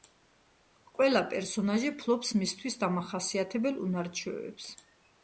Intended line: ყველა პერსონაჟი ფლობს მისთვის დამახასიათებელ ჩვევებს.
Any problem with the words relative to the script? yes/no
yes